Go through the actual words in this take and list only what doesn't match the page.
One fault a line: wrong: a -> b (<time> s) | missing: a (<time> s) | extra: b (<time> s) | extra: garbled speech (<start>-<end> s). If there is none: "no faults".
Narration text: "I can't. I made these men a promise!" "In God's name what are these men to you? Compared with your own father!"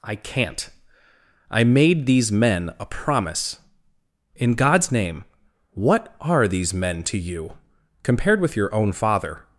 no faults